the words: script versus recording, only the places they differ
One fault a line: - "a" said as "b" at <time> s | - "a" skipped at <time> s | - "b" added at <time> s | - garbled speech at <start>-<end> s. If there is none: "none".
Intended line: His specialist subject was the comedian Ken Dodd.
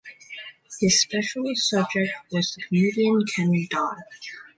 none